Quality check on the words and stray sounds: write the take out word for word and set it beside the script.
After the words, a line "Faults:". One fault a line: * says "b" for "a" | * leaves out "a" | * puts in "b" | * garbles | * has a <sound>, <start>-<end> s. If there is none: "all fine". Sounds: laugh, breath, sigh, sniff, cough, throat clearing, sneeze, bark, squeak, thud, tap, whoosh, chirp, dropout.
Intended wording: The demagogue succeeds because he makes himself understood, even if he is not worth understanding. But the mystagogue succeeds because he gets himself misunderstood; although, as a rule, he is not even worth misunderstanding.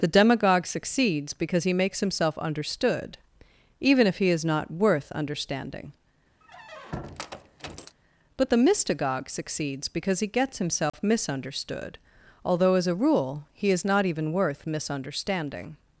The demagogue succeeds because he makes himself understood, even if he is not worth understanding. But the mystagogue succeeds because he gets himself misunderstood; although, as a rule, he is not even worth misunderstanding.
Faults:
* has a squeak, 6.4-8.0 s
* has a dropout, 10.9-10.9 s